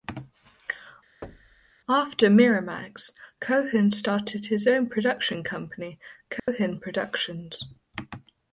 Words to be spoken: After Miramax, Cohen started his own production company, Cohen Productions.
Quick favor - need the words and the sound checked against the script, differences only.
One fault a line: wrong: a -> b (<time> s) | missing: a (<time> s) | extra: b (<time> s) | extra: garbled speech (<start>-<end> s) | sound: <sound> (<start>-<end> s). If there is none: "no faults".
sound: thud (1.2-1.7 s)
sound: dropout (6.4-6.5 s)